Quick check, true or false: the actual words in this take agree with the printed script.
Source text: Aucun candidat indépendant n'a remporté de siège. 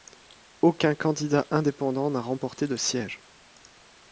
true